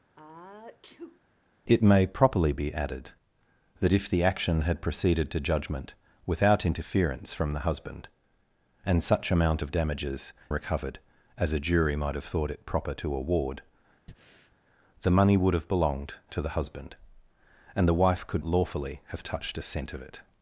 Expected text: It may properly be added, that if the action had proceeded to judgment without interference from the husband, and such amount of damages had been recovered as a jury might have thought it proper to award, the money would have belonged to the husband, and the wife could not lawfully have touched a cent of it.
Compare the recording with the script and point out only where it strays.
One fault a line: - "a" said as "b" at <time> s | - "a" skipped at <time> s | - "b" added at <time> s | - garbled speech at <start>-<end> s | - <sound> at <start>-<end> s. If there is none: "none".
- sneeze at 0.2-1.2 s
- "had been" skipped at 10.3 s
- breath at 14.1-14.6 s
- "not" skipped at 18.4 s